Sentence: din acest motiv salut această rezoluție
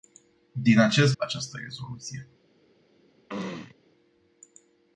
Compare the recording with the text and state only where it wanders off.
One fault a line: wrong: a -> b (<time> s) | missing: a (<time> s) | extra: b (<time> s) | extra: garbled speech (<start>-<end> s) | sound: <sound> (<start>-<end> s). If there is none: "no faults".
missing: motiv salut (1.1 s)
sound: throat clearing (3.3-3.7 s)